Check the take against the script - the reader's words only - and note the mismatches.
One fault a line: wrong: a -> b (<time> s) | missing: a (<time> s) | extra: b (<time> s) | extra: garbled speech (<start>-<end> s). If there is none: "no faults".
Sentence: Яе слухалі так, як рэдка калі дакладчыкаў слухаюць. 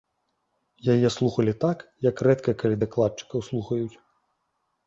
no faults